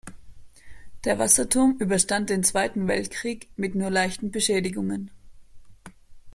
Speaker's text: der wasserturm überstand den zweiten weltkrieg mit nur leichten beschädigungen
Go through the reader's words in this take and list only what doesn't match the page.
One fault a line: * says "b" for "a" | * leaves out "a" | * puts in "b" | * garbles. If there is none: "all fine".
all fine